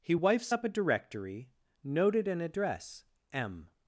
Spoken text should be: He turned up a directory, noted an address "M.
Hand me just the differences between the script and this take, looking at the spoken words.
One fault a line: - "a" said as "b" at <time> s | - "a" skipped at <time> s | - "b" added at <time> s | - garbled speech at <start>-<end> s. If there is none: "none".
- "turned" said as "wifes" at 0.1 s